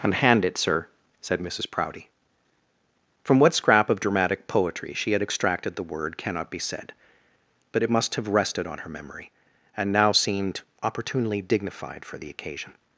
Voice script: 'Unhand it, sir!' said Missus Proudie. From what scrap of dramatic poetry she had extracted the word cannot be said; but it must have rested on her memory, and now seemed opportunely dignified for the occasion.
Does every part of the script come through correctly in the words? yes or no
yes